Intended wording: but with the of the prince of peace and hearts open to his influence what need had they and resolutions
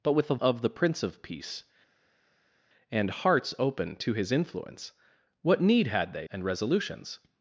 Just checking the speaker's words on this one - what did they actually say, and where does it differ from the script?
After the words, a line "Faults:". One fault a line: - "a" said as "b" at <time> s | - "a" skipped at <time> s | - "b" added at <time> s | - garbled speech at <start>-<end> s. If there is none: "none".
but with the of the prince of peace and hearts open to his influence what need had they and resolutions
Faults:
none